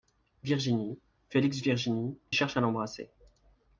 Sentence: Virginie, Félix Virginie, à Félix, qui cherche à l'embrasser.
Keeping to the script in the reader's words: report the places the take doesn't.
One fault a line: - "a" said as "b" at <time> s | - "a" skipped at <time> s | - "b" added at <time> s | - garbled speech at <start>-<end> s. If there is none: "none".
- "à Félix qui" skipped at 2.2 s